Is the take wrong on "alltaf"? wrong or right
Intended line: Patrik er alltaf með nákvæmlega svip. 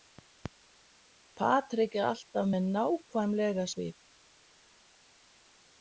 right